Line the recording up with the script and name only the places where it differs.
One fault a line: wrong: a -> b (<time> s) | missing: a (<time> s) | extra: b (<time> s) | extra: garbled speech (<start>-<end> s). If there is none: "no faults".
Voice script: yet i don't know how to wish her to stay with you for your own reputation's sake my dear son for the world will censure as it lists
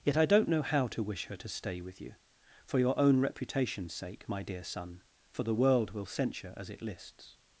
no faults